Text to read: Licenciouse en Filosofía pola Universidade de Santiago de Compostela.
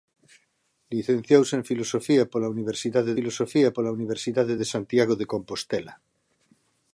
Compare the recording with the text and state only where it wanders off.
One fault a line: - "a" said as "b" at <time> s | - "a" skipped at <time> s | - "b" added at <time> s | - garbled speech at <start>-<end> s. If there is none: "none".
- "Filosofía pola Universidade" added at 3.2 s